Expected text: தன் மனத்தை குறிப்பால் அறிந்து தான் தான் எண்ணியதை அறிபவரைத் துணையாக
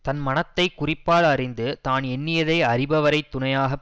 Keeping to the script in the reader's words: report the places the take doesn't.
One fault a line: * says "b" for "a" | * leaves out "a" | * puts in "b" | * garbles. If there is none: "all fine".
* leaves out "தான்"